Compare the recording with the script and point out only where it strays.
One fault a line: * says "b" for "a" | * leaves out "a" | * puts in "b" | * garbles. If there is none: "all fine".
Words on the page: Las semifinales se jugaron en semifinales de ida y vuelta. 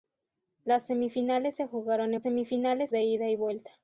all fine